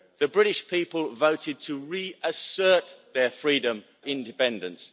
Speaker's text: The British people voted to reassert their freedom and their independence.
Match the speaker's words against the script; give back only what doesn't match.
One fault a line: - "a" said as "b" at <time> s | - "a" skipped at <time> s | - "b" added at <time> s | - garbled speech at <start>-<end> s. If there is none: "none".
- "and their" skipped at 3.8 s